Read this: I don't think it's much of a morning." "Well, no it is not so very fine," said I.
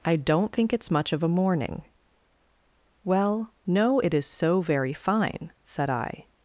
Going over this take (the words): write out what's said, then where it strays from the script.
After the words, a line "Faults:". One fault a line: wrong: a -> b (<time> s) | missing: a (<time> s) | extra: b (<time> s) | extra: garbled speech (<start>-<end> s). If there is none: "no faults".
I don't think it's much of a morning." "Well, no it is so very fine," said I.
Faults:
missing: not (4.3 s)